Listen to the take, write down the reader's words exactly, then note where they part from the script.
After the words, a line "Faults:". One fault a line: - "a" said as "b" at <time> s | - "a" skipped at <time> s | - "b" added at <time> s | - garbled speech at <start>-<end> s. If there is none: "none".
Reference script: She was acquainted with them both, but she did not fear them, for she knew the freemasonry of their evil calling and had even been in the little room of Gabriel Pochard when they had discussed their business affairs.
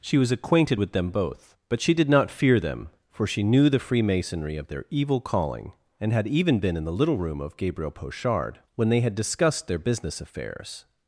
She was acquainted with them both, but she did not fear them, for she knew the freemasonry of their evil calling and had even been in the little room of Gabriel Pochard when they had discussed their business affairs.
Faults:
none